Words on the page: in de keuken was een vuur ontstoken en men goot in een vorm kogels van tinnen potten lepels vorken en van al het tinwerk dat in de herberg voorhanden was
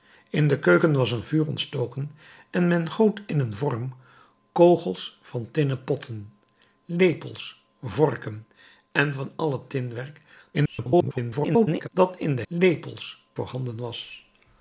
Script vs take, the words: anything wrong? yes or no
yes